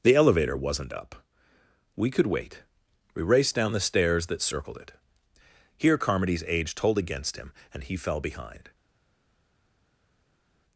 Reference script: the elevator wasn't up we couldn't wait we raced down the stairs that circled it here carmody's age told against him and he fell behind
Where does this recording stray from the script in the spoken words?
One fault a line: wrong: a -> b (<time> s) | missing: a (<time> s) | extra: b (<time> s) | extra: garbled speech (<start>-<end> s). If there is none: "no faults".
wrong: couldn't -> could (2.1 s)